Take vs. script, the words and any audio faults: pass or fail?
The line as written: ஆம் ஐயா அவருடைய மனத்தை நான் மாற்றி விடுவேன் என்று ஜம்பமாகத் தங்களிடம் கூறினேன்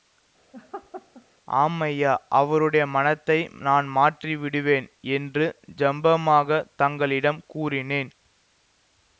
fail